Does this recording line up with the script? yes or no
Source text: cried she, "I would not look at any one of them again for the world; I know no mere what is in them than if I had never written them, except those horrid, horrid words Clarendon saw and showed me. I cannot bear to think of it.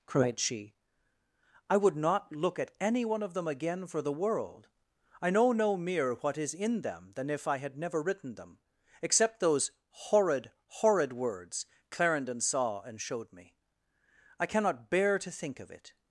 yes